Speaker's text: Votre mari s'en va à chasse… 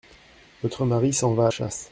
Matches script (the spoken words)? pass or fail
pass